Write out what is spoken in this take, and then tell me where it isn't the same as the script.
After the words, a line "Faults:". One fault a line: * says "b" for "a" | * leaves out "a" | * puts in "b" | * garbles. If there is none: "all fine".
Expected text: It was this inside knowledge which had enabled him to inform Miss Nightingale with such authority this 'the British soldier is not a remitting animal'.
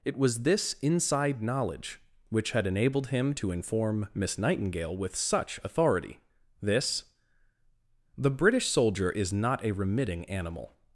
It was this inside knowledge which had enabled him to inform Miss Nightingale with such authority this 'the British soldier is not a remitting animal'.
Faults:
all fine